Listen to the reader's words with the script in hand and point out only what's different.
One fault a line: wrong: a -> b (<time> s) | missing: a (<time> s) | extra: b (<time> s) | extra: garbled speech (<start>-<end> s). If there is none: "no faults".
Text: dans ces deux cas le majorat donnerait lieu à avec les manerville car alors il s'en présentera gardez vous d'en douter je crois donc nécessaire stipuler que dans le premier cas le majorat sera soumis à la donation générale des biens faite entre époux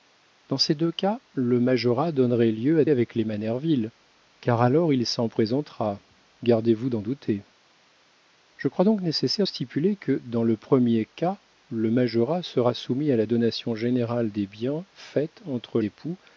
no faults